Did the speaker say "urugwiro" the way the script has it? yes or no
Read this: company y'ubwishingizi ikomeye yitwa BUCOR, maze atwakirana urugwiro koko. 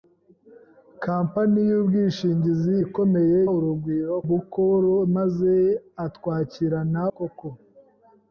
no